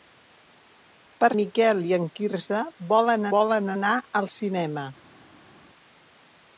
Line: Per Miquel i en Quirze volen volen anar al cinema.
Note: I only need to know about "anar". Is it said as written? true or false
true